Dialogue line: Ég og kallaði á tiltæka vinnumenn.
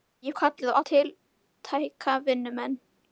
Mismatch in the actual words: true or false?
false